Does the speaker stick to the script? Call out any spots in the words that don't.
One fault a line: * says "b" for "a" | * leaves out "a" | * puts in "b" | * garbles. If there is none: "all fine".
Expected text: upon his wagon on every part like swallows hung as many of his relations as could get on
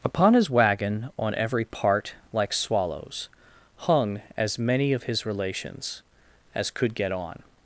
all fine